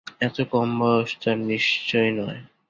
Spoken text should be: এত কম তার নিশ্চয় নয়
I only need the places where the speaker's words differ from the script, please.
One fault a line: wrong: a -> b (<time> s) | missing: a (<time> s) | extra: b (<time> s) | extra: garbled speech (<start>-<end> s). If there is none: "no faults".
extra: বয়স (0.8 s)